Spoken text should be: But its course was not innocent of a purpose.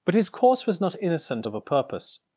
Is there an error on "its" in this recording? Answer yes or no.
yes